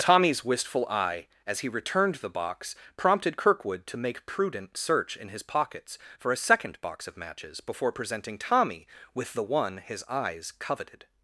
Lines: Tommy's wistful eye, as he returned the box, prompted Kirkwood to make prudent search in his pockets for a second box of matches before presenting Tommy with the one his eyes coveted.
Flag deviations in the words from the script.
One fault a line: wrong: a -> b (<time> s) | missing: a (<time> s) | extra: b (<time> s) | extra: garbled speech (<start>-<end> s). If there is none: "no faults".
no faults